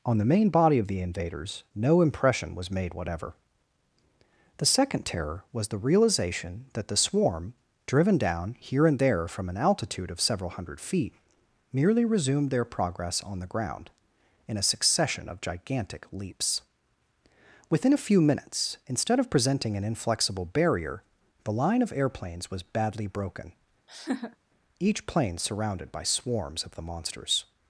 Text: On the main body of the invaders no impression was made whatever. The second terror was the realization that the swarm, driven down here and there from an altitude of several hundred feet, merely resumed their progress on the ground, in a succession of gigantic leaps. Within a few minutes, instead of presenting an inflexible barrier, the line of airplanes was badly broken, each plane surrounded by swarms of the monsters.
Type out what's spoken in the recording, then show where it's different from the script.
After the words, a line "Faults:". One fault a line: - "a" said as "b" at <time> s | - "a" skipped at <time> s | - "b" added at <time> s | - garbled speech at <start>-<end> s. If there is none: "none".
On the main body of the invaders no impression was made whatever. The second terror was the realization that the swarm, driven down here and there from an altitude of several hundred feet, merely resumed their progress on the ground, in a succession of gigantic leaps. Within a few minutes, instead of presenting an inflexible barrier, the line of airplanes was badly broken, each plane surrounded by swarms of the monsters.
Faults:
none